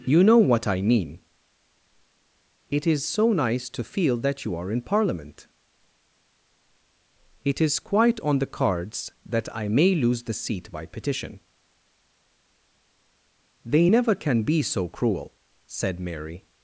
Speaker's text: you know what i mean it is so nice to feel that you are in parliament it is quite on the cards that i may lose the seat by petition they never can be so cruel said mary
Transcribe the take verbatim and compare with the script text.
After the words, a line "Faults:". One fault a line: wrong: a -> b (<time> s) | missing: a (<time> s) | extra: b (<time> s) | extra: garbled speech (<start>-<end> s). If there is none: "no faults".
you know what i mean it is so nice to feel that you are in parliament it is quite on the cards that i may lose the seat by petition they never can be so cruel said mary
Faults:
no faults